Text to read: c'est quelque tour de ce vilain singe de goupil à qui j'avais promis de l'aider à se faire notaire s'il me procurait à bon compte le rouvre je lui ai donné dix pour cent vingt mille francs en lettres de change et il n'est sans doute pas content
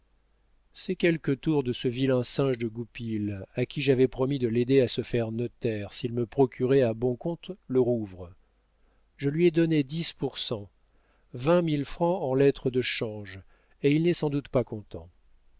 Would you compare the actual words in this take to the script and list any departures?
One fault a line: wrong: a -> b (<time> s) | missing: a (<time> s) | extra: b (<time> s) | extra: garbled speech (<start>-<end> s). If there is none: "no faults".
no faults